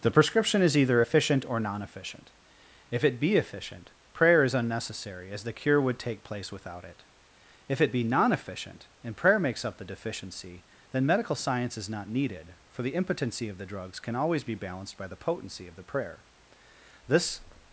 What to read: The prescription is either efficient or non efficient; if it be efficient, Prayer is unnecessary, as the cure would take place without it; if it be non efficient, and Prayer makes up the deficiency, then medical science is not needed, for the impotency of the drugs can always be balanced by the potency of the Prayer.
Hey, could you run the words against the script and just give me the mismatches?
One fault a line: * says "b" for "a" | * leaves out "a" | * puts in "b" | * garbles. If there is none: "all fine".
* puts in "This"